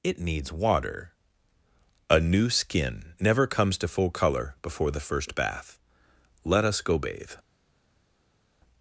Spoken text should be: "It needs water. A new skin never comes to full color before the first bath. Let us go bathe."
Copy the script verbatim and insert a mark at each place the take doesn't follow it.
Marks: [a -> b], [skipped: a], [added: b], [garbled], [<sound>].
"It needs water. A new skin never comes to full color before the first bath. Let us go bathe."